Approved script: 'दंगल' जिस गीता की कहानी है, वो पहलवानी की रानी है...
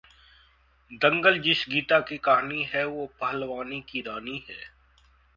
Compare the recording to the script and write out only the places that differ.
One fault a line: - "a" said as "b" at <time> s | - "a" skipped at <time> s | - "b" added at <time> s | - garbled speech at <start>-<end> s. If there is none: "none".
none